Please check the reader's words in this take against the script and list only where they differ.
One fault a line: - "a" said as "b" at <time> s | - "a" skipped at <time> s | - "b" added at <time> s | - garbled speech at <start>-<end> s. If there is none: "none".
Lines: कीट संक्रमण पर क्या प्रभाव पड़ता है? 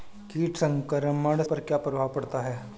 none